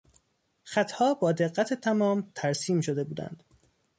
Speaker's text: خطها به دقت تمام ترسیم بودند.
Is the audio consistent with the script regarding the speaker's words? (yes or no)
no